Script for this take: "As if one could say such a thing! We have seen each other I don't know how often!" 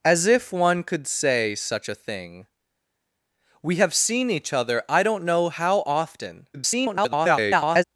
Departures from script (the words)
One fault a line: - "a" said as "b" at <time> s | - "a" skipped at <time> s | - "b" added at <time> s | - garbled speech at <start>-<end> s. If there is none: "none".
- garbled speech at 6.5-7.8 s